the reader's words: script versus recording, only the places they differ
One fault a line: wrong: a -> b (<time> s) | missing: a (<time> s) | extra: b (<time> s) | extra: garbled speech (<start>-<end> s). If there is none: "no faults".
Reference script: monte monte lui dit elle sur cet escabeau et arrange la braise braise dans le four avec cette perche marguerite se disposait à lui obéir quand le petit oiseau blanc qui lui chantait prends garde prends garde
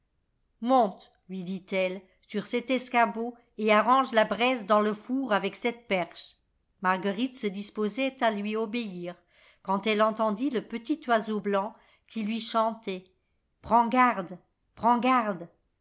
missing: monte (1.1 s)
missing: braise (4.7 s)
extra: elle entendit (9.8 s)